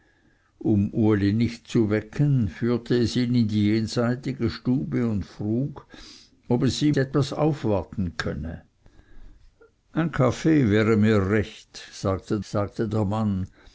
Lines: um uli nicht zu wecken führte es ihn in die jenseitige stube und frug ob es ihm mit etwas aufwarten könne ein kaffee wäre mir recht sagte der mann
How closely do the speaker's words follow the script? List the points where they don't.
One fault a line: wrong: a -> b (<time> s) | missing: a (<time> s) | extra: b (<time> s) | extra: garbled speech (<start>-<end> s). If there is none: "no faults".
missing: mit (7.0 s)
extra: sagte (12.4 s)